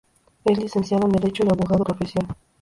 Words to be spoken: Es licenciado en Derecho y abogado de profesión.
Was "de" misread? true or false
true